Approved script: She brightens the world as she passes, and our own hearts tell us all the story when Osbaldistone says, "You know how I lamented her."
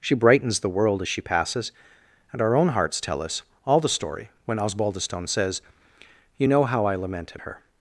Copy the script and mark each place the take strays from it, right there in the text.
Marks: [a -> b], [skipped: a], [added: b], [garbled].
She brightens the world as she passes, and our own hearts tell us all the story when Osbaldistone says, "You know how I lamented her."